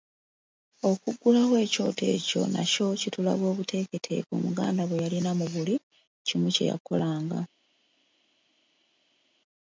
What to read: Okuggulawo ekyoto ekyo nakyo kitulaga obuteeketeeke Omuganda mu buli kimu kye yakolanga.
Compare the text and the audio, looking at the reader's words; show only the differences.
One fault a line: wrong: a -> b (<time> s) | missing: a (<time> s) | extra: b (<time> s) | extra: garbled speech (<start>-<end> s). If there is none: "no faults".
extra: bwe yalina (4.8 s)